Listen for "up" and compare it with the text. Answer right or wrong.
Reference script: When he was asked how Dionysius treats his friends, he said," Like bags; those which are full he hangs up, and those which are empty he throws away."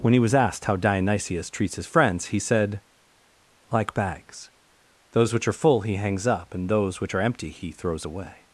right